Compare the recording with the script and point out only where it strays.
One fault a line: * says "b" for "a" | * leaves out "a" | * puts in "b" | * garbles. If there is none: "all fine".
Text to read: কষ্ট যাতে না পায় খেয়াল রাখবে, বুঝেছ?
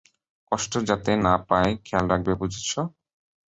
all fine